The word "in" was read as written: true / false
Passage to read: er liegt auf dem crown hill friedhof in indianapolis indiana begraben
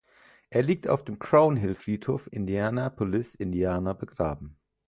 false